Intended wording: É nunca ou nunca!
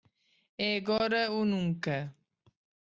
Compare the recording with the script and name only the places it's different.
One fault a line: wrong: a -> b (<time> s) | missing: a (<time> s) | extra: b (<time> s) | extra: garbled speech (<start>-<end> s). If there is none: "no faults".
wrong: nunca -> agora (0.8 s)